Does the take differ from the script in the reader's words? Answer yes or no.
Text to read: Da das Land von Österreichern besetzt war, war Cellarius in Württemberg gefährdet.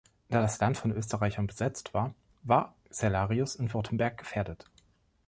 no